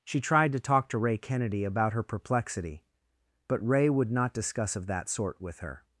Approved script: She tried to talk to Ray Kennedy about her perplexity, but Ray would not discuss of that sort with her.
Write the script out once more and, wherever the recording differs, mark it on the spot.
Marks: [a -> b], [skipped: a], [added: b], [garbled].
She tried to talk to Ray Kennedy about her perplexity, but Ray would not discuss of that sort with her.